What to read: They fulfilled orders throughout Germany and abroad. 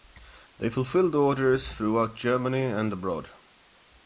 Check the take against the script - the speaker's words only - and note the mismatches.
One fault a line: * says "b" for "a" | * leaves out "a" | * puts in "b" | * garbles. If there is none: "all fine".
all fine